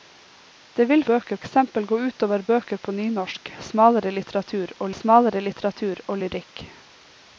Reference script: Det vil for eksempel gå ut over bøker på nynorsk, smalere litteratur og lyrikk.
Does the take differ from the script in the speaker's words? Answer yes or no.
yes